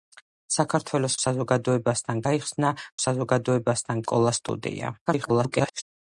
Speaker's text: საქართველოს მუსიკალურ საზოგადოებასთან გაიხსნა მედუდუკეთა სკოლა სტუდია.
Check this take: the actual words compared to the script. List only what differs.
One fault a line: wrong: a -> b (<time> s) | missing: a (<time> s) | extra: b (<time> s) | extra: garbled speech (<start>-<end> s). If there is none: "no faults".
missing: მუსიკალურ (1.2 s)
wrong: მედუდუკეთა -> საზოგადოებასთან (3.0 s)
extra: garbled speech (5.1-5.8 s)